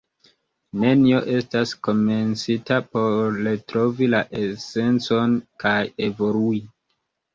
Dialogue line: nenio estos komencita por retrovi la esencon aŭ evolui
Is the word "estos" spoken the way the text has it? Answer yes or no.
no